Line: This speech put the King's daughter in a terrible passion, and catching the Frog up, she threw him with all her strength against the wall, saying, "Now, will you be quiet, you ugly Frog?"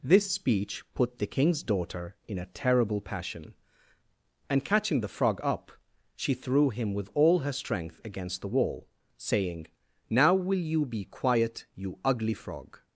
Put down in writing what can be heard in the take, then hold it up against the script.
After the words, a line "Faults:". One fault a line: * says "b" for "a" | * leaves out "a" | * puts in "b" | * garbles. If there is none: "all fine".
This speech put the King's daughter in a terrible passion, and catching the Frog up, she threw him with all her strength against the wall, saying, "Now, will you be quiet, you ugly Frog?"
Faults:
all fine